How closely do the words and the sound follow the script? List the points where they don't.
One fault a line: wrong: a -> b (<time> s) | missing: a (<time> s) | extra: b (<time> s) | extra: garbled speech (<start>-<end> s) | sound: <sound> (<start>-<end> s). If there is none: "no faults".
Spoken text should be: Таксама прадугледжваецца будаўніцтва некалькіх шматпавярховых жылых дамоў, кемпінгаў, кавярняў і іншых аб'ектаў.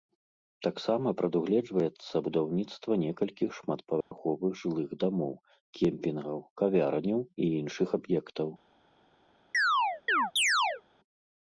sound: dropout (4.0-4.1 s)
sound: chirp (9.5-10.8 s)